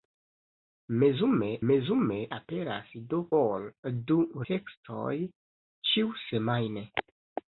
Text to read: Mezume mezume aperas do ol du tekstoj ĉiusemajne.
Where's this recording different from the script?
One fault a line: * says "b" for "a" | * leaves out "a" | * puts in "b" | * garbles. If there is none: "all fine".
all fine